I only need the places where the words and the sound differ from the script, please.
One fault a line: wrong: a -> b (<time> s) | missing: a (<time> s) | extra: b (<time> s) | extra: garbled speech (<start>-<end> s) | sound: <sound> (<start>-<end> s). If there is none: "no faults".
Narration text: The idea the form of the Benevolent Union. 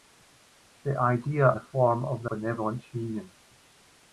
no faults